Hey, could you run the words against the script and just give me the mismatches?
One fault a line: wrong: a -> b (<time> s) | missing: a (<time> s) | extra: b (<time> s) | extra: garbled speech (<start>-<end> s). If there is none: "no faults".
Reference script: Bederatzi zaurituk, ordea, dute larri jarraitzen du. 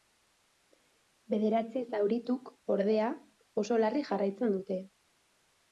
wrong: dute -> oso (3.6 s)
wrong: du -> dute (4.6 s)